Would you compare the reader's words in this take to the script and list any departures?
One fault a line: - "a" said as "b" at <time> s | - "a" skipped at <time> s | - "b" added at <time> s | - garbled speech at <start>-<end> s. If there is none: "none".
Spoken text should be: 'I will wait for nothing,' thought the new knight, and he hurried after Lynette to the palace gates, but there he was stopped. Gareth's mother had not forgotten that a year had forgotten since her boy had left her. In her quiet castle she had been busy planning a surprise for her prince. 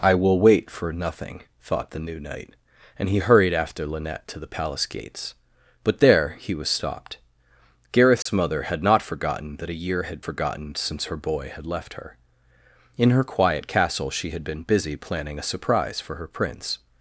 none